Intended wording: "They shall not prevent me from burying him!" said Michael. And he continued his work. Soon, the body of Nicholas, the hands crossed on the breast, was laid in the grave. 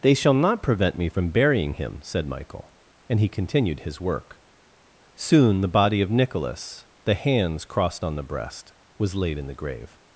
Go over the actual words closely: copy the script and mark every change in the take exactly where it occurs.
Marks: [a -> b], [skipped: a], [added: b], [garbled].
"They shall not prevent me from burying him!" said Michael. And he continued his work. Soon, the body of Nicholas, the hands crossed on the breast, was laid in the grave.